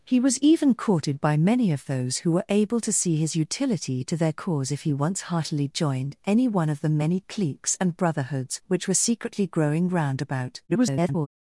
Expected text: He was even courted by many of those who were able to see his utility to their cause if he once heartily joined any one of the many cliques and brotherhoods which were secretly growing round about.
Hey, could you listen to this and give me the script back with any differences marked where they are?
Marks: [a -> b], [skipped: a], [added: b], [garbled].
He was even courted by many of those who were able to see his utility to their cause if he once heartily joined any one of the many cliques and brotherhoods which were secretly growing round about. [garbled]